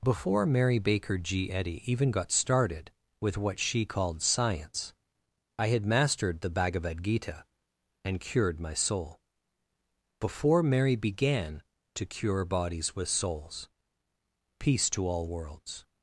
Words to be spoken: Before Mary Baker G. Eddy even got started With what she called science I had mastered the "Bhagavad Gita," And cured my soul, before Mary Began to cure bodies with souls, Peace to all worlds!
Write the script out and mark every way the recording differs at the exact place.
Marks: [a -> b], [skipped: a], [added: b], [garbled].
Before Mary Baker G. Eddy even got started With what she called science I had mastered the "Bhagavad Gita," And cured my soul, before Mary Began to cure bodies with souls, Peace to all worlds!